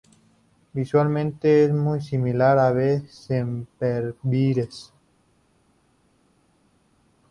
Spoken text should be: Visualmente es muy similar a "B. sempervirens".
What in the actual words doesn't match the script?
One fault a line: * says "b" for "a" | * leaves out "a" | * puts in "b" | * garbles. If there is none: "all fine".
all fine